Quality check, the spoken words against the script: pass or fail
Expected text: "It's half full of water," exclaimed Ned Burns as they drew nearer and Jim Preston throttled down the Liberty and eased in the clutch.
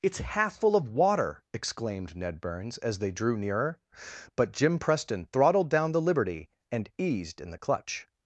fail